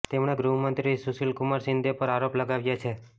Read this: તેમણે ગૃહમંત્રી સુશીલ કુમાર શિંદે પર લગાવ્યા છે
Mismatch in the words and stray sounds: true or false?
true